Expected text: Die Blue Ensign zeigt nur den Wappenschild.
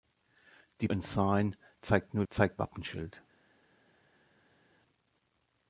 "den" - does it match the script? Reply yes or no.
no